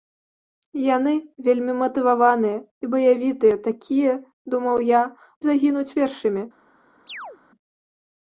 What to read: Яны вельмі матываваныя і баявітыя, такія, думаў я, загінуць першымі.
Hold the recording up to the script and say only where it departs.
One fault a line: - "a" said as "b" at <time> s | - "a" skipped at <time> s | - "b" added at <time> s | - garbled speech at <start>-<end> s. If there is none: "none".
none